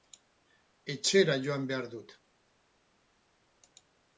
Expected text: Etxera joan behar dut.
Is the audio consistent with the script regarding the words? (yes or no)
yes